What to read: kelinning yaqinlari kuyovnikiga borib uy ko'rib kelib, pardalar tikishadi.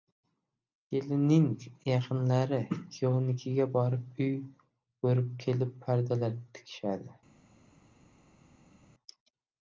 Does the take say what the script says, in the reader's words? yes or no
yes